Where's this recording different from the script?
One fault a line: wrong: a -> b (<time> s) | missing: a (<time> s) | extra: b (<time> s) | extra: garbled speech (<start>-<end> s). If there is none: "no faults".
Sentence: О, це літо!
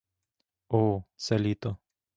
no faults